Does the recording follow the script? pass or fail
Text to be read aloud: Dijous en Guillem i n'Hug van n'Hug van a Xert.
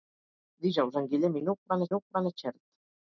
pass